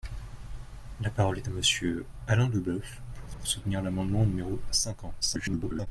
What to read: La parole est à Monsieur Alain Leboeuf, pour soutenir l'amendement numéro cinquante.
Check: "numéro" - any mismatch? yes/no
no